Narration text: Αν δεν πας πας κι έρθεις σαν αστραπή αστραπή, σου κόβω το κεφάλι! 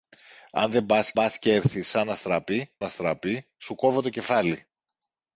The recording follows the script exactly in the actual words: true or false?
true